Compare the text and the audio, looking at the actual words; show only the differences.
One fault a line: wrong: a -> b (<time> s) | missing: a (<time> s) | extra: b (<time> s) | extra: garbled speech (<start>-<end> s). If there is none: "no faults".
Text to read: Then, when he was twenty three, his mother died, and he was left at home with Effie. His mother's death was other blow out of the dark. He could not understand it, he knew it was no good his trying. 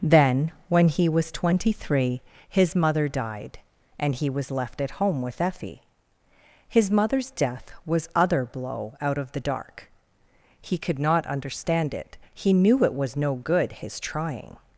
no faults